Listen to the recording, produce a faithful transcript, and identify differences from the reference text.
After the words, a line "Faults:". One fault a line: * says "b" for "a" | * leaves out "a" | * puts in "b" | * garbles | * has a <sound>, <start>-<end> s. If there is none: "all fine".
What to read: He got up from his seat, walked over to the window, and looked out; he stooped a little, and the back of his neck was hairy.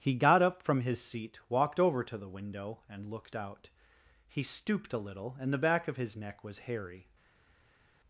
He got up from his seat, walked over to the window, and looked out; he stooped a little, and the back of his neck was hairy.
Faults:
all fine